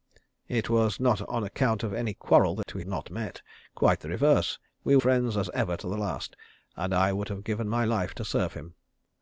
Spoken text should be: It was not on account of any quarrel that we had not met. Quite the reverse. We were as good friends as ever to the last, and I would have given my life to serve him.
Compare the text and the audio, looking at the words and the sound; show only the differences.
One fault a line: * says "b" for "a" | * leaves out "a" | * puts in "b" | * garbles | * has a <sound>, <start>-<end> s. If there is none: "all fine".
* has a dropout, 2.6-2.7 s
* leaves out "had"
* leaves out "were as good"